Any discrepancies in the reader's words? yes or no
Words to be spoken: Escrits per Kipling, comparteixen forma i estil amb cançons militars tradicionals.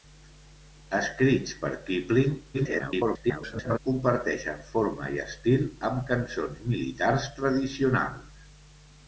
yes